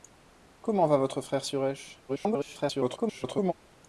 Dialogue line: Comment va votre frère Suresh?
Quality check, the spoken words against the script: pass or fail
fail